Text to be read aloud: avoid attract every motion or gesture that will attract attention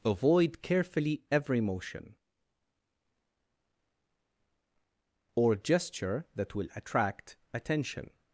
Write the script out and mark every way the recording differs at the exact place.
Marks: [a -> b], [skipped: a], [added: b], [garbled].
avoid [attract -> carefully] every motion or gesture that will attract attention